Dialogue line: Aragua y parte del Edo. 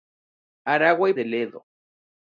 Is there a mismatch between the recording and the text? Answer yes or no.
yes